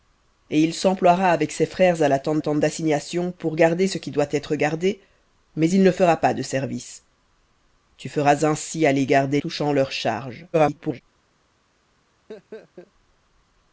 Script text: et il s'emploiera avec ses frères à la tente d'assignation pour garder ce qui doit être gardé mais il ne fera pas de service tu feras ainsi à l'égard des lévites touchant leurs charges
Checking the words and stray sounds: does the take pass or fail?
fail